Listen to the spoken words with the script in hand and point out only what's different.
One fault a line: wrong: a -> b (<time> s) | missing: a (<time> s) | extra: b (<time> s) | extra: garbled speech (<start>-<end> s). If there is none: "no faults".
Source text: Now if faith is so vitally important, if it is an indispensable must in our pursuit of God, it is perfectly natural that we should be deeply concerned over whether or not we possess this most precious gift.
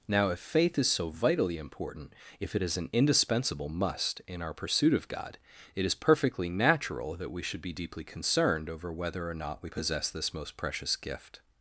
no faults